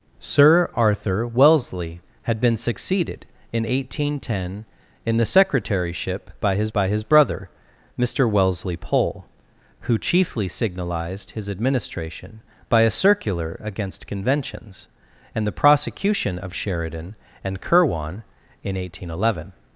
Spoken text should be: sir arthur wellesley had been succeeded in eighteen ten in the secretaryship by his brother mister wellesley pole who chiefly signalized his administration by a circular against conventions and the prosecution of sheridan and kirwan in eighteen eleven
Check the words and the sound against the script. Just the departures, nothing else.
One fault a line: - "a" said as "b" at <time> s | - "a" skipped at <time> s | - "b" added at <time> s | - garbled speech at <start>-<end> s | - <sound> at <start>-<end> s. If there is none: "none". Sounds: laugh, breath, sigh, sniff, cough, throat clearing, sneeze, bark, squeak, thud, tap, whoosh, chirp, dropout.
- "by his" added at 6.7 s